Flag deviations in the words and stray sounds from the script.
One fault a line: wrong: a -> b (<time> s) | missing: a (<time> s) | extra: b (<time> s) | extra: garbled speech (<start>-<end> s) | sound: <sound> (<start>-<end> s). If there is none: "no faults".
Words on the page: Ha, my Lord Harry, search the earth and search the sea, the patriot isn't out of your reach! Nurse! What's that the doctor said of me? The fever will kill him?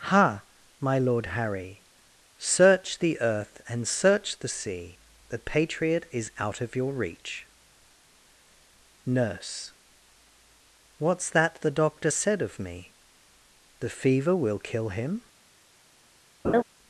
wrong: isn't -> is (6.1 s)
sound: laugh (16.4-16.6 s)